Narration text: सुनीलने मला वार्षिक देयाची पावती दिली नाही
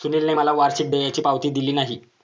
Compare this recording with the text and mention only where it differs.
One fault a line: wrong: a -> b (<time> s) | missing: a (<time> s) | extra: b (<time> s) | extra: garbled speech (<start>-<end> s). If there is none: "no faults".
no faults